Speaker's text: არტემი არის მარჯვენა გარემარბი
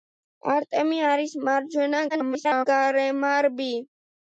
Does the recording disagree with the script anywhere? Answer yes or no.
yes